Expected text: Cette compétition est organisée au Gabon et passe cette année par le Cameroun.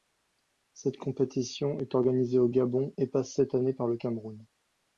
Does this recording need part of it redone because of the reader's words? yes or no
no